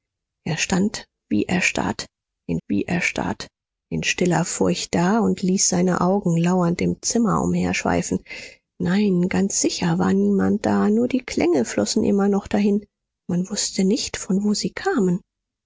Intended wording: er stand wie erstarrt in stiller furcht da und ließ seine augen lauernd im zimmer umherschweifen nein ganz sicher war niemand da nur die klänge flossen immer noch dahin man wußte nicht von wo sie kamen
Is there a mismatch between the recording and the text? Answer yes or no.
yes